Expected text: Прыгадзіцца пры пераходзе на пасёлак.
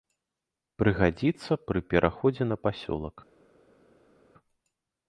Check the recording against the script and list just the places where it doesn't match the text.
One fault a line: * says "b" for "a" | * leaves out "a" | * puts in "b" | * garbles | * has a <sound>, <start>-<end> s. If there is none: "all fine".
all fine